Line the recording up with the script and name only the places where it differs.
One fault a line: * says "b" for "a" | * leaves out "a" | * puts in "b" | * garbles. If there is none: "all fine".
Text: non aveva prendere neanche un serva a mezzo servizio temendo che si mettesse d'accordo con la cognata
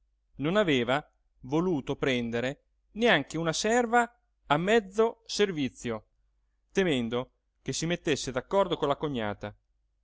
* puts in "voluto"
* says "una" for "un"